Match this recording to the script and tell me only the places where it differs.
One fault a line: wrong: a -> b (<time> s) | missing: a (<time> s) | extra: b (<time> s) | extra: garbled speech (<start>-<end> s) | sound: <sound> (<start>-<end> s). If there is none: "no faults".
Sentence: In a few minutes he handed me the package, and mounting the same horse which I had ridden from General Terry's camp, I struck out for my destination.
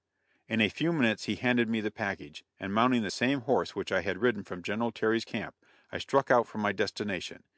no faults